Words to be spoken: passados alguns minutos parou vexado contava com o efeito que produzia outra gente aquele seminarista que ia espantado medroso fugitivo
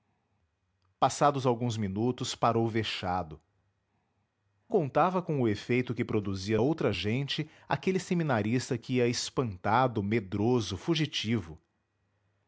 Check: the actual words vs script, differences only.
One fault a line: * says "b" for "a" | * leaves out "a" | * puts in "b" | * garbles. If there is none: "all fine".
all fine